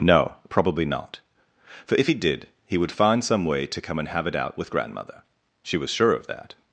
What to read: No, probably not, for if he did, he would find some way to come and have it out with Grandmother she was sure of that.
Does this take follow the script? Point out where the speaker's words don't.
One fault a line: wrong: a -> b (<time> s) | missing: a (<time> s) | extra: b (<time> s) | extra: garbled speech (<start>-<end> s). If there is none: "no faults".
no faults